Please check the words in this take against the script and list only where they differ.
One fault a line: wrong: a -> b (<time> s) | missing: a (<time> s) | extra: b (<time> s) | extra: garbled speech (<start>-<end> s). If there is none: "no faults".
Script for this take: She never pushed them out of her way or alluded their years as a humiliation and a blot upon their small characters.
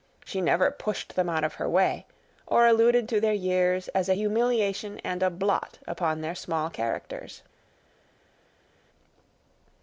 extra: to (3.1 s)